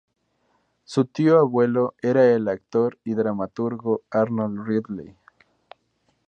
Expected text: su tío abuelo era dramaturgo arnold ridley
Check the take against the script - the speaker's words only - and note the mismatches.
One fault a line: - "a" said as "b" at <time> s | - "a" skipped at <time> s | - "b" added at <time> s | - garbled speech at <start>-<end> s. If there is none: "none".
- "el actor y" added at 2.2 s